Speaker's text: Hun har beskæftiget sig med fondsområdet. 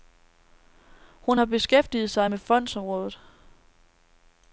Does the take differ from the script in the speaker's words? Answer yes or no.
no